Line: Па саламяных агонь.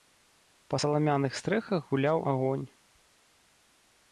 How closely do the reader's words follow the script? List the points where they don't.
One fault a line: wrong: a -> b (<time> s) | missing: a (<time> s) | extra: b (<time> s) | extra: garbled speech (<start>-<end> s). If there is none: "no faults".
extra: стрэхах гуляў (1.4 s)